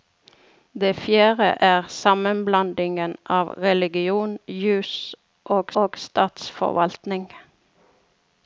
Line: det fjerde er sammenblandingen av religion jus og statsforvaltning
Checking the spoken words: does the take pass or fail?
fail